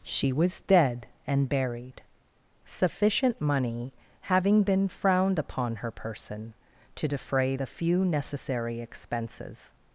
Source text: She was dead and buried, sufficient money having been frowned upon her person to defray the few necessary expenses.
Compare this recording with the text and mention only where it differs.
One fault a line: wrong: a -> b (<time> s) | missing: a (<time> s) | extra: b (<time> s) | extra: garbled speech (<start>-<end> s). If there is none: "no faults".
no faults